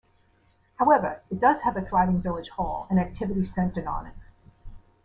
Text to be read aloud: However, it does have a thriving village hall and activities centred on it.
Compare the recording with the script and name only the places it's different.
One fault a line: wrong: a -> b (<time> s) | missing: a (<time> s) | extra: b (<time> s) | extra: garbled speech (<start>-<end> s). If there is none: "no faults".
no faults